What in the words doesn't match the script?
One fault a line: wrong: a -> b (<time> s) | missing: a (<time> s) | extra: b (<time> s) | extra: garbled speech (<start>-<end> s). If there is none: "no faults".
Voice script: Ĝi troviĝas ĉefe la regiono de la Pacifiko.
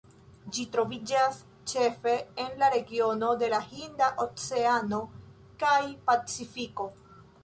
extra: en (2.4 s)
extra: Hinda oceano kaj (3.7 s)